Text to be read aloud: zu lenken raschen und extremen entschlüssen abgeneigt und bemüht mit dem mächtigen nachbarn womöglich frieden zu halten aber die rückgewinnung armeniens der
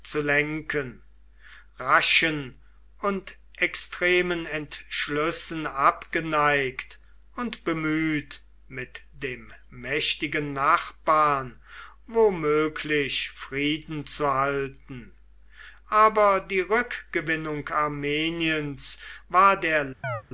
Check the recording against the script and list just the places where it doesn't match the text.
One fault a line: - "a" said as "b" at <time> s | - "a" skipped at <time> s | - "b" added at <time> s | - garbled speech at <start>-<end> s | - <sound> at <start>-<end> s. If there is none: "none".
- "war" added at 19.3 s
- chirp at 20.0-20.2 s